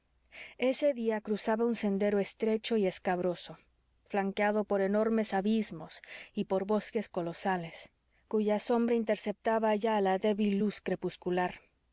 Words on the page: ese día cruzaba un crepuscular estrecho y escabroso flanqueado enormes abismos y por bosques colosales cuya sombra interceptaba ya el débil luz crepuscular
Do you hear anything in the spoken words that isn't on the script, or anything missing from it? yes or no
yes